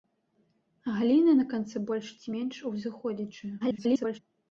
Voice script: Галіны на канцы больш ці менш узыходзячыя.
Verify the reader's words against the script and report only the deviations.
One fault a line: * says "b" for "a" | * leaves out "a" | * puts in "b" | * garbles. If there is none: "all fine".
* garbles